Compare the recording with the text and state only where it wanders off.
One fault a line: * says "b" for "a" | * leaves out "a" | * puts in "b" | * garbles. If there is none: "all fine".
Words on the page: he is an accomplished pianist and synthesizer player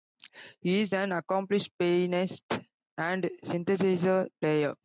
all fine